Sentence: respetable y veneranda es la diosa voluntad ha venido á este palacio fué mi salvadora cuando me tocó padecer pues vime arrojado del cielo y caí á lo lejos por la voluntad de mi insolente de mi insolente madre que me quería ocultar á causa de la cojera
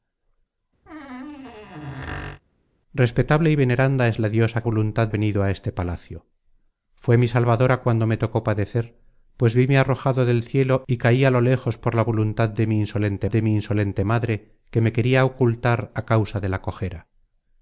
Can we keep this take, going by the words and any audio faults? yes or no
no